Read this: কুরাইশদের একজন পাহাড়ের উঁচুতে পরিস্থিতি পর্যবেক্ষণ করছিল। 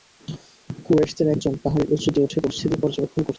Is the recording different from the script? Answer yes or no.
yes